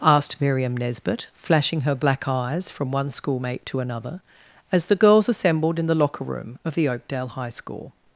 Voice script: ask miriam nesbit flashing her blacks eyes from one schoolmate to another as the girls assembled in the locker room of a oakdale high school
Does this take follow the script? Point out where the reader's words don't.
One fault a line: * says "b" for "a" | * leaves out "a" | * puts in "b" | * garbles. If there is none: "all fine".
* says "asked" for "ask"
* says "black" for "blacks"
* says "the" for "a"